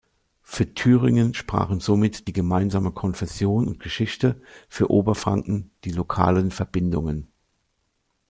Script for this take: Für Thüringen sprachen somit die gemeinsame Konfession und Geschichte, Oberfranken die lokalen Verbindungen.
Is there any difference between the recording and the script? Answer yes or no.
yes